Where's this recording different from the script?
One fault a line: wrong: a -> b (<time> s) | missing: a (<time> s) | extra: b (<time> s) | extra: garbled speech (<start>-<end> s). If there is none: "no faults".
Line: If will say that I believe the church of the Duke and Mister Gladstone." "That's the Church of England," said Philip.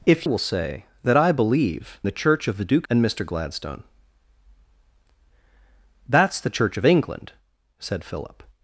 no faults